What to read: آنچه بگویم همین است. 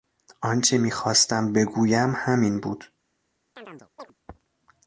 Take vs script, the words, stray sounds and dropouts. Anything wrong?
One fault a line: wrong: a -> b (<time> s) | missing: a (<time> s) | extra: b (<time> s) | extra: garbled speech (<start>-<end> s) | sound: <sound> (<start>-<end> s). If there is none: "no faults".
extra: میخواستم (0.8 s)
wrong: است -> بود (2.6 s)
sound: chirp (3.6-4.1 s)